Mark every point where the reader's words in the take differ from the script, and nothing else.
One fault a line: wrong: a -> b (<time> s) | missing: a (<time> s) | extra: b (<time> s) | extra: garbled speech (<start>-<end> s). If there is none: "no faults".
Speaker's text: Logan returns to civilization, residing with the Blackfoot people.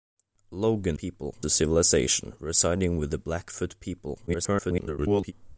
wrong: returns -> people (1.0 s)
extra: garbled speech (4.3-5.3 s)